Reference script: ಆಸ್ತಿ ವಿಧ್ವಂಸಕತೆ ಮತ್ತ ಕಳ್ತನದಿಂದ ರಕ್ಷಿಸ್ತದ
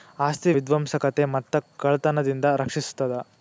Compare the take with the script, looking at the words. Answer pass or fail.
pass